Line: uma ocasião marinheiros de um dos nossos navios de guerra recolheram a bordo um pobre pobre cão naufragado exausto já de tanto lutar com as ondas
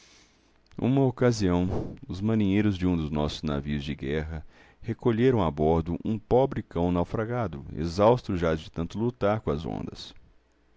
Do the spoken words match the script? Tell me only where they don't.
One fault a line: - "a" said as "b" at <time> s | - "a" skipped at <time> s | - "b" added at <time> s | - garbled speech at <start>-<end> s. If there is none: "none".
- "os" added at 2.1 s
- "pobre" skipped at 6.6 s